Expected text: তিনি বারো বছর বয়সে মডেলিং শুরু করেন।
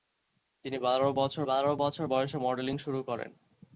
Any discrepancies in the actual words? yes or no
yes